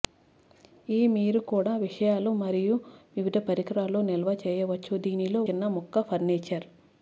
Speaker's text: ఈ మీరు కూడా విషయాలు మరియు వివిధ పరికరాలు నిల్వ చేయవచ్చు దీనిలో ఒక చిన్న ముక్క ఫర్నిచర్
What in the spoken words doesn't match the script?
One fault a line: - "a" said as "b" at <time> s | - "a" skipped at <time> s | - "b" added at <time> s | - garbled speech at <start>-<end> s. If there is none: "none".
- "ఒక" skipped at 5.4 s